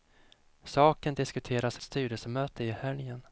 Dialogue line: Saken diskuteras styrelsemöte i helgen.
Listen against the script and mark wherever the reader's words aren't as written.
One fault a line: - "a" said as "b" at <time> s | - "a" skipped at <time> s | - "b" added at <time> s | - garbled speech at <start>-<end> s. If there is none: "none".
none